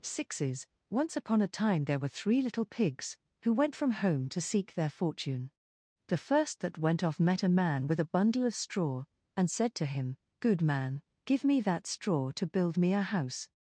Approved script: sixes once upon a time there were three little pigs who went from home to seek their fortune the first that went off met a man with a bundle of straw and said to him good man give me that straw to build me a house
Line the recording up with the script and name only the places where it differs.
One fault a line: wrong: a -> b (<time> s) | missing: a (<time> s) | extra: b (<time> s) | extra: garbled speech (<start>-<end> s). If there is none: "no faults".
no faults